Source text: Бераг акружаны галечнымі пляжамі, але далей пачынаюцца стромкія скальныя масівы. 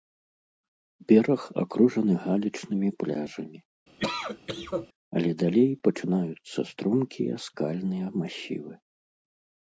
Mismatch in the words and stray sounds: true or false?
true